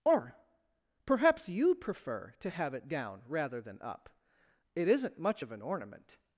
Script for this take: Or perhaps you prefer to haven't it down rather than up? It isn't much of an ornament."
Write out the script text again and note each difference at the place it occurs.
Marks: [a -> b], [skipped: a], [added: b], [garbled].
Or perhaps you prefer to [haven't -> have] it down rather than up? It isn't much of an ornament."